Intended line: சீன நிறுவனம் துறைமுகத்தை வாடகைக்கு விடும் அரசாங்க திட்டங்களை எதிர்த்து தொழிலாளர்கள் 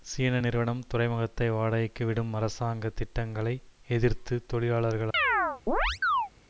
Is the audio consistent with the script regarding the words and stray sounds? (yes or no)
no